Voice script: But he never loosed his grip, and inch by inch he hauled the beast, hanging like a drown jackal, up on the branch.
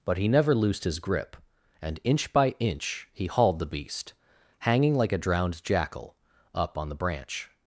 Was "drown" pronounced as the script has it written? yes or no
no